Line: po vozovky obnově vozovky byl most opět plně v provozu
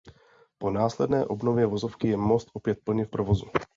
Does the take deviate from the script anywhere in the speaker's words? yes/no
yes